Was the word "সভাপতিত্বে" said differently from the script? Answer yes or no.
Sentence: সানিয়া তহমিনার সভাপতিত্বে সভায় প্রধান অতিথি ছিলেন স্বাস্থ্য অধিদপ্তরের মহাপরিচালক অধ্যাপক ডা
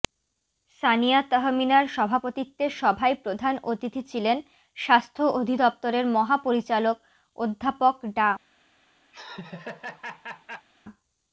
no